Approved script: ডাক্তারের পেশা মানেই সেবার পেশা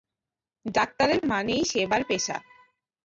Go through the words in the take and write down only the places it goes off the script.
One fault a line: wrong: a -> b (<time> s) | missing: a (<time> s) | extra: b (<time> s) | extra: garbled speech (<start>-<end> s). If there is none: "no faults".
missing: পেশা (1.2 s)